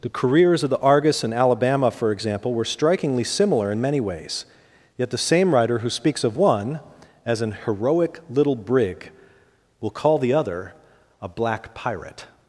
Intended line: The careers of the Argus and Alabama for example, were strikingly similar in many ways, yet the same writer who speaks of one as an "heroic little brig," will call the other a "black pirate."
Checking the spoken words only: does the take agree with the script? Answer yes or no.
yes